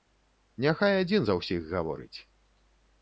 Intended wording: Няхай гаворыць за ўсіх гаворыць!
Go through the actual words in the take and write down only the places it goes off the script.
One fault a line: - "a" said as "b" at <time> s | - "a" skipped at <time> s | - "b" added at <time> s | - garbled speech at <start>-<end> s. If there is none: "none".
- "гаворыць" said as "адзін" at 1.0 s